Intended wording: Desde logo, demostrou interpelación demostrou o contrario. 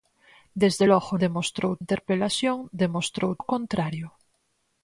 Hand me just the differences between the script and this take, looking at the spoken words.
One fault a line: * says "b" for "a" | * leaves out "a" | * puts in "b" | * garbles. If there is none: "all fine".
all fine